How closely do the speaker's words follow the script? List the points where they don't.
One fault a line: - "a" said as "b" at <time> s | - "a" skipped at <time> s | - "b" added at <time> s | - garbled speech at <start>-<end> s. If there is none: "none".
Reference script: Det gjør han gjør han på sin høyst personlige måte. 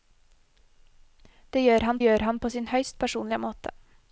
none